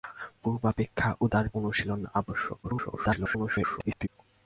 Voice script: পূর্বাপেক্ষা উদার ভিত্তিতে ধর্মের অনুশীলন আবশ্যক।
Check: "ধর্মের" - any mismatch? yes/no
yes